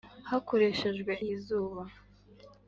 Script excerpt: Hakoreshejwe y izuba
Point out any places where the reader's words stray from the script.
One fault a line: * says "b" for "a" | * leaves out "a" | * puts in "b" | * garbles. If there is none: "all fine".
all fine